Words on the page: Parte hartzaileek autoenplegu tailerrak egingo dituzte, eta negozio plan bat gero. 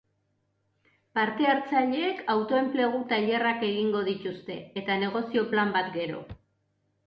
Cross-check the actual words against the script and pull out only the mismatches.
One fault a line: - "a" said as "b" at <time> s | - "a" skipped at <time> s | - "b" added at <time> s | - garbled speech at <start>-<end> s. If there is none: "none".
none